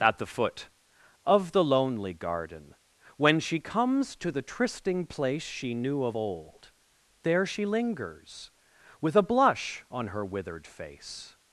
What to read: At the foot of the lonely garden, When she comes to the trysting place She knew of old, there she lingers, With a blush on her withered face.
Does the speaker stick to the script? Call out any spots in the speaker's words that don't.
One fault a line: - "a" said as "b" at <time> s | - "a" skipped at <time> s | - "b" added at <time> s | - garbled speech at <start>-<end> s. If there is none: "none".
none